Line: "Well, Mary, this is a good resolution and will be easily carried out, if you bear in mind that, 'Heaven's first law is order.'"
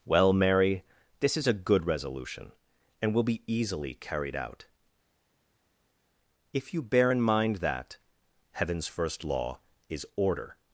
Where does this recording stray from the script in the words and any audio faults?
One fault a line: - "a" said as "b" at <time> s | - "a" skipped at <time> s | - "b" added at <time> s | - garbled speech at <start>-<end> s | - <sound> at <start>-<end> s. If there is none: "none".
none